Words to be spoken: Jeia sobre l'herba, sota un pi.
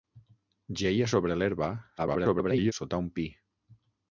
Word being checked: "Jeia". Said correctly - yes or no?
yes